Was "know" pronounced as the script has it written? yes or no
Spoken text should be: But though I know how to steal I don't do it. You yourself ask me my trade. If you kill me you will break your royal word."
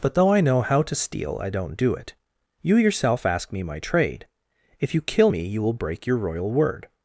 yes